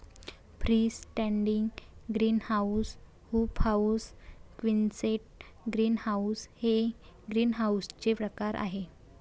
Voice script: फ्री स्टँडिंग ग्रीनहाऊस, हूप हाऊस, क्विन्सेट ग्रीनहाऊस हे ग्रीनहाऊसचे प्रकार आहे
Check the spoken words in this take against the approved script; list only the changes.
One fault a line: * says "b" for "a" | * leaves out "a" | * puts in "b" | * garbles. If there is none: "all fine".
all fine